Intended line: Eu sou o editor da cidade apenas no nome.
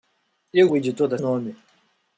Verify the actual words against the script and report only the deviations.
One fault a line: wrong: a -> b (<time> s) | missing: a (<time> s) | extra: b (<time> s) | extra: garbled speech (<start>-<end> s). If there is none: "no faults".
missing: sou (0.7 s)
missing: cidade apenas no (1.2 s)